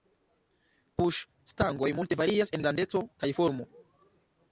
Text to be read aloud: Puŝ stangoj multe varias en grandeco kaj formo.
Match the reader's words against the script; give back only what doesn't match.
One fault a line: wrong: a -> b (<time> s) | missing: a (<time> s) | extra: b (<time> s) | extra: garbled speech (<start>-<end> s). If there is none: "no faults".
no faults